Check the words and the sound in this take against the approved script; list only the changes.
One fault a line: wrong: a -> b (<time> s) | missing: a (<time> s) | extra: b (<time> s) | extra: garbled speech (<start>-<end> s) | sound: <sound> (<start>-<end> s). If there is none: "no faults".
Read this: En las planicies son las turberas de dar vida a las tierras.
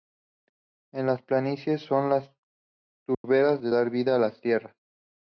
sound: dropout (3.1-3.2 s)